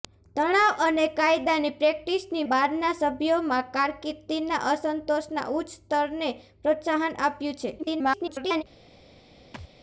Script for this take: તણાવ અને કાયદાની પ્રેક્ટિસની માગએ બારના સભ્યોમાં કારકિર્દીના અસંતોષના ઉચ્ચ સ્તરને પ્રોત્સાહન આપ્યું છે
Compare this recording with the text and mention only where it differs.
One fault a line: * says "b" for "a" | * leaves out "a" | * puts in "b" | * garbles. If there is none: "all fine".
* leaves out "માગએ"
* garbles